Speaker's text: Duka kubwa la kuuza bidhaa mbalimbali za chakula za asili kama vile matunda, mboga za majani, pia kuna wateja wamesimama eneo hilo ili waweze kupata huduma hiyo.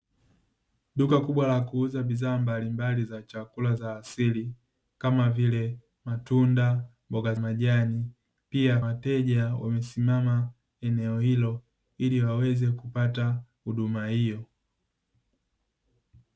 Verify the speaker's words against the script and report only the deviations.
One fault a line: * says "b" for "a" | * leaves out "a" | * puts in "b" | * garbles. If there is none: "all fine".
* leaves out "za"
* leaves out "kuna"